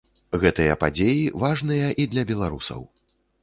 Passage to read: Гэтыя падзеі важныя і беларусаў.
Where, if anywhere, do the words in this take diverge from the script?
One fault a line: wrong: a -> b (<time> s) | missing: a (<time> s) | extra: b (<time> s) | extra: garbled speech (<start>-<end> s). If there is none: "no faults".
extra: для (2.2 s)